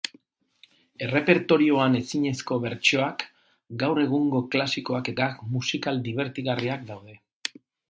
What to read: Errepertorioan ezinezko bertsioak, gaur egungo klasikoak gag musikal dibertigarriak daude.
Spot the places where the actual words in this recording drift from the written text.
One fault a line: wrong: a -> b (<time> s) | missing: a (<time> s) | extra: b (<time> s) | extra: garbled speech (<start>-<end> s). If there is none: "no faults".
no faults